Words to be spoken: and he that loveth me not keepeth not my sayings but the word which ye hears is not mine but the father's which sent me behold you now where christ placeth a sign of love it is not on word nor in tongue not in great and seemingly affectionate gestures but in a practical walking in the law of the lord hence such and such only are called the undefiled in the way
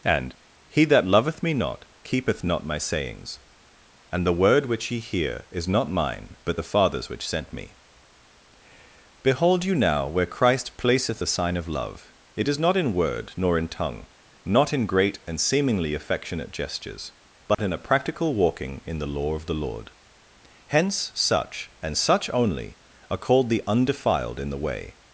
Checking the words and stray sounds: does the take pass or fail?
fail